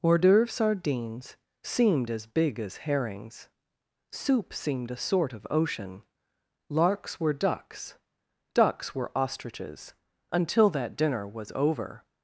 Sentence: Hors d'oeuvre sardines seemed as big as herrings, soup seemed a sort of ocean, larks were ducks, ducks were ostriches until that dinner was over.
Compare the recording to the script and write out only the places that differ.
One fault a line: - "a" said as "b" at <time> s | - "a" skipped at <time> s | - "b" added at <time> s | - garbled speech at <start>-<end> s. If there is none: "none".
none